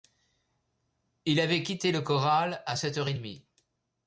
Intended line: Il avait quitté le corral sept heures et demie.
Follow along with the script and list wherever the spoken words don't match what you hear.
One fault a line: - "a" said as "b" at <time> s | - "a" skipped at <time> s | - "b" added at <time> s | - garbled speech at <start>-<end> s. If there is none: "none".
- "à" added at 2.6 s